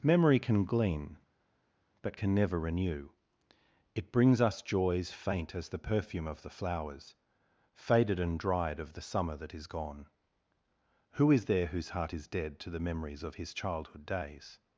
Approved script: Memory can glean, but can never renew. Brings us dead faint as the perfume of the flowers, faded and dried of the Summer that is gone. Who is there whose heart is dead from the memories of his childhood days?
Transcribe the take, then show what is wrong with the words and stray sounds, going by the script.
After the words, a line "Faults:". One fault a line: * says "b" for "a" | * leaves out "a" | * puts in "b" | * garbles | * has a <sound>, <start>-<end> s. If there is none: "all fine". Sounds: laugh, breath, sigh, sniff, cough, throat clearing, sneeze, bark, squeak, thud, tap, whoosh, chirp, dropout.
Memory can glean, but can never renew. It brings us joys faint as the perfume of the flowers, faded and dried of the Summer that is gone. Who is there whose heart is dead to the memories of his childhood days?
Faults:
* puts in "It"
* says "joys" for "dead"
* says "to" for "from"